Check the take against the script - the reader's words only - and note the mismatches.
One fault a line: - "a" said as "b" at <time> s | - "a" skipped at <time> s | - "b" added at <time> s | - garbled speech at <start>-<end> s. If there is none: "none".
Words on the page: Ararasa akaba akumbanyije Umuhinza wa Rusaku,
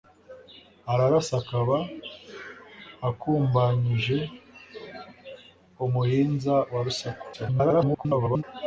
- garbled speech at 7.3-8.4 s